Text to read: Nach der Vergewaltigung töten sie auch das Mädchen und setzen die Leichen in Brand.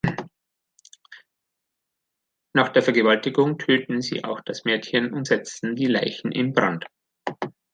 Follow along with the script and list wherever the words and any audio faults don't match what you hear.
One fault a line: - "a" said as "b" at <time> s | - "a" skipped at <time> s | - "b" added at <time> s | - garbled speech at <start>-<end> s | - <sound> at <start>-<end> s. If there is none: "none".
none